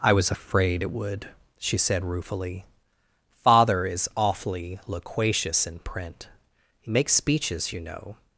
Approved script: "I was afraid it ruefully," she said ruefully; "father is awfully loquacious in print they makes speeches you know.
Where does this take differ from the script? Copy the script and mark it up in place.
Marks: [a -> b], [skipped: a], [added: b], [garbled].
"I was afraid it [ruefully," -> would] she said ruefully; "father is awfully loquacious in print [they -> he] makes speeches you know.